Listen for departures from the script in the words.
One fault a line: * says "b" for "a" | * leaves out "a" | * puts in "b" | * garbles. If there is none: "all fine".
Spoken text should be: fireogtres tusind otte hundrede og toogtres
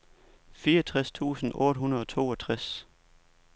all fine